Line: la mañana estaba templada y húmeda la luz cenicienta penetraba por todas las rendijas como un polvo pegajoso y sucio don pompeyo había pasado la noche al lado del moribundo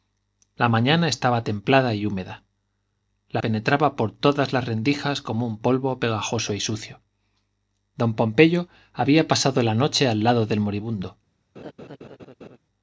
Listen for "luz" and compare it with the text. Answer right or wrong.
wrong